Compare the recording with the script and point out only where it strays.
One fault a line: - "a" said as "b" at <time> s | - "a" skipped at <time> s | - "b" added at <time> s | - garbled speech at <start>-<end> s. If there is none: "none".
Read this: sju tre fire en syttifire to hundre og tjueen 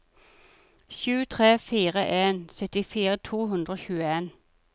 none